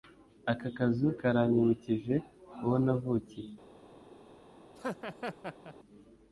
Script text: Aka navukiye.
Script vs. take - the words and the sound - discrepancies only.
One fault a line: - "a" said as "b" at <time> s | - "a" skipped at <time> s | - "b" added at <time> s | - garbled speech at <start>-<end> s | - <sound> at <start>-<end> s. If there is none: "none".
- "kazu karanyibukije uwo" added at 0.8 s
- laugh at 4.7-5.7 s